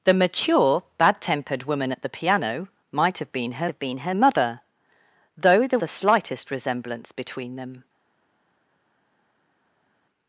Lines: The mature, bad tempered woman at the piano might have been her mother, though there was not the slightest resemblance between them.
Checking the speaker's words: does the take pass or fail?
fail